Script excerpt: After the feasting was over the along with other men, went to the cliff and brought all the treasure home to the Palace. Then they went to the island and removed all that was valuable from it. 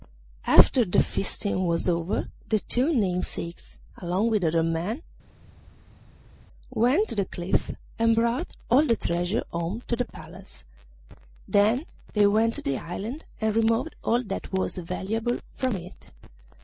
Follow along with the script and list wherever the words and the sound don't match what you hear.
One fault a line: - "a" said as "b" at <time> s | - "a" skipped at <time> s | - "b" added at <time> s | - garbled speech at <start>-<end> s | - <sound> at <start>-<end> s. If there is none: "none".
- "two namesakes" added at 2.6 s